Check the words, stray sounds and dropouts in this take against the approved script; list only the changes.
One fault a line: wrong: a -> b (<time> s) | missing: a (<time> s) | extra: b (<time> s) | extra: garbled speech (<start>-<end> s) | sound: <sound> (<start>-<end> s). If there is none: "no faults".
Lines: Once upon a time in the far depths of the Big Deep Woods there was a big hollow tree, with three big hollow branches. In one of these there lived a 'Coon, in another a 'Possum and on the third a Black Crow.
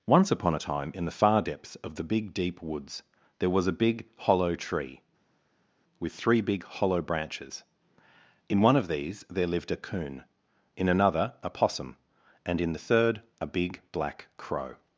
wrong: on -> in (12.6 s)
extra: Big (13.5 s)